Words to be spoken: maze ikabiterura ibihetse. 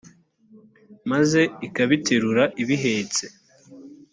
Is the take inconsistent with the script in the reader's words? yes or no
no